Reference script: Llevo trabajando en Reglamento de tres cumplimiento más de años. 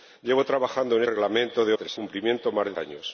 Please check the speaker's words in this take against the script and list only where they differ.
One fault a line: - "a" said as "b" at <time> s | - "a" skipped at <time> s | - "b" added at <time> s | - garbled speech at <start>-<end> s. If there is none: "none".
none